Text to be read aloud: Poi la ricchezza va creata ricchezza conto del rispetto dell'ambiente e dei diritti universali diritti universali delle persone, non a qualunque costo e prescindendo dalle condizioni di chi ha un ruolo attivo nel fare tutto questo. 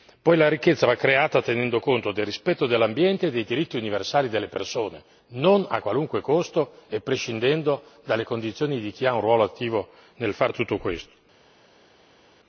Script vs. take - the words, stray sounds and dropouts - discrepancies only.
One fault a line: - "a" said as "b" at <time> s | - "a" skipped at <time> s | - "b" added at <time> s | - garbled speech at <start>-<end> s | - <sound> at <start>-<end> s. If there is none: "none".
- "ricchezza" said as "tenendo" at 1.4 s
- "diritti universali" skipped at 4.3 s